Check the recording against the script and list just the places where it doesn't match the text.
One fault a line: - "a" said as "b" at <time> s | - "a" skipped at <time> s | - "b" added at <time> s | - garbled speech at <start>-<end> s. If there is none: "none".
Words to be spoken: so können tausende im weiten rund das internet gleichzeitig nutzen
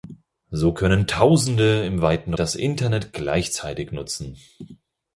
- "rund" skipped at 2.3 s